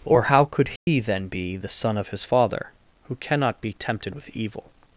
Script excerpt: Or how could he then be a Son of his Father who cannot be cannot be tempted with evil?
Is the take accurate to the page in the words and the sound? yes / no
no